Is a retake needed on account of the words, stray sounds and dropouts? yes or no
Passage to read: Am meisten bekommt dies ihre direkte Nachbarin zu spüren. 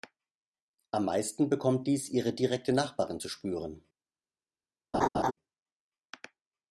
yes